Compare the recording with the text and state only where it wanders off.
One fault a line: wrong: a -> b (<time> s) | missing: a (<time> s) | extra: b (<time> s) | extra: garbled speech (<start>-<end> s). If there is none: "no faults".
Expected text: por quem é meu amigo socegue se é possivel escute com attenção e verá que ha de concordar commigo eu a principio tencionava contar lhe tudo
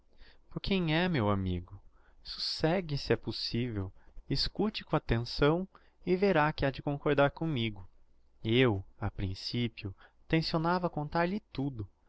no faults